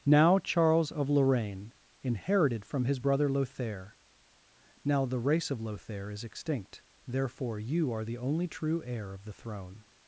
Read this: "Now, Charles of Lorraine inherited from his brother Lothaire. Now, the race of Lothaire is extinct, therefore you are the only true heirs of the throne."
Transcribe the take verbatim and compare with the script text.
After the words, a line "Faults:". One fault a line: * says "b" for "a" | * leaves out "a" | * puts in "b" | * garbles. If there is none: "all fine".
"Now, Charles of Lorraine inherited from his brother Lothaire. Now, the race of Lothaire is extinct, therefore you are the only true heir of the throne."
Faults:
* says "heir" for "heirs"